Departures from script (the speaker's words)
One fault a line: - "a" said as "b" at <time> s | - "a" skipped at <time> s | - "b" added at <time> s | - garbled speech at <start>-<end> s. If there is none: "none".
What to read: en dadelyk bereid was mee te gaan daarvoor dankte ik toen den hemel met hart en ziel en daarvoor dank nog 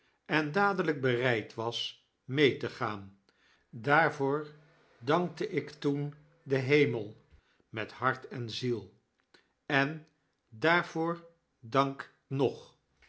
none